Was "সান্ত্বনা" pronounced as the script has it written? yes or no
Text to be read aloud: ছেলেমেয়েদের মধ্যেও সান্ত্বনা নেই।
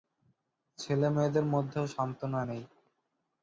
yes